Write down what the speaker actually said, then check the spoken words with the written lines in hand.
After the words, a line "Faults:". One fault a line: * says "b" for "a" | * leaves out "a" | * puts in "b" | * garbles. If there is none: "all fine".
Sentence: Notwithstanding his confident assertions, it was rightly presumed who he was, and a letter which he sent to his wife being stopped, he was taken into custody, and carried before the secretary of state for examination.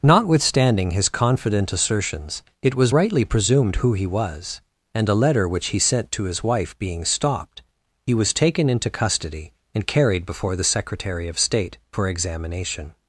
Notwithstanding his confident assertions, it was rightly presumed who he was, and a letter which he sent to his wife being stopped, he was taken into custody, and carried before the secretary of state for examination.
Faults:
all fine